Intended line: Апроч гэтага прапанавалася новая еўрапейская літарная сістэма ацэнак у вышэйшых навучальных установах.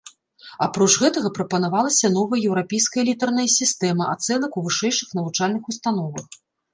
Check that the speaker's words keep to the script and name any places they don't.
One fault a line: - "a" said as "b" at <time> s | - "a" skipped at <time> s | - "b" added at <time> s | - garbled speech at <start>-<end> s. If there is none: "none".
none